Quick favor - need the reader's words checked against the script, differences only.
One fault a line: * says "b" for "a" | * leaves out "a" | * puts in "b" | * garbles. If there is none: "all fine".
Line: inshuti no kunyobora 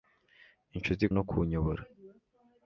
all fine